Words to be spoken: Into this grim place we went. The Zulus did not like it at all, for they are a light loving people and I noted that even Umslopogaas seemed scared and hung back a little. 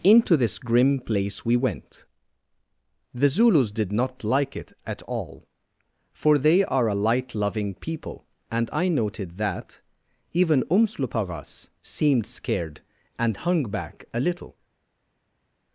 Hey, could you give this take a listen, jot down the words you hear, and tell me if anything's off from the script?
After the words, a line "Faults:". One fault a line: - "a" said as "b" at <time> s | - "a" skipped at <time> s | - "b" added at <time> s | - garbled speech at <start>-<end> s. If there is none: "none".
Into this grim place we went. The Zulus did not like it at all, for they are a light loving people and I noted that even Umslopogaas seemed scared and hung back a little.
Faults:
none